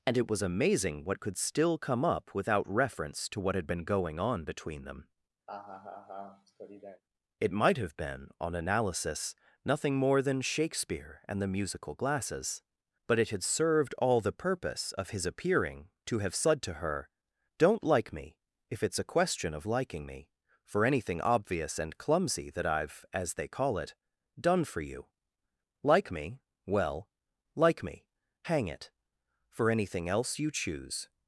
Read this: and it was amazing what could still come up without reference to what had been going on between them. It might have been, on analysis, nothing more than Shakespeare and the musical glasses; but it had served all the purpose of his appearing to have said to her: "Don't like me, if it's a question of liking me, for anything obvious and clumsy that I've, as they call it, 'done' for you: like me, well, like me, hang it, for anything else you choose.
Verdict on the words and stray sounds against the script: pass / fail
fail